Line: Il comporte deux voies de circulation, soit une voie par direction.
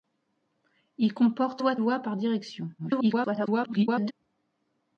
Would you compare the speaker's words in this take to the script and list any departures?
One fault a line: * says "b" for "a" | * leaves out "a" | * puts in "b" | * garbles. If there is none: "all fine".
* leaves out "deux"
* leaves out "circulation soit une"
* garbles